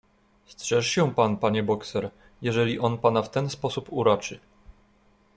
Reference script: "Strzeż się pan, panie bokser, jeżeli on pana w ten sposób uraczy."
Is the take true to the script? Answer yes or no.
yes